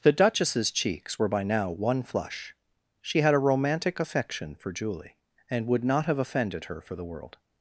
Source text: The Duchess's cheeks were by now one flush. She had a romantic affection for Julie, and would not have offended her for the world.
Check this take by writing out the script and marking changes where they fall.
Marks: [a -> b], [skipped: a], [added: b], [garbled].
The Duchess's cheeks were by now one flush. She had a romantic affection for Julie, and would not have offended her for the world.